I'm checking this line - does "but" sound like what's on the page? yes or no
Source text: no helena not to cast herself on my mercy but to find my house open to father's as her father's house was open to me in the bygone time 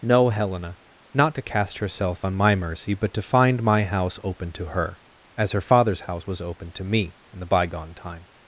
yes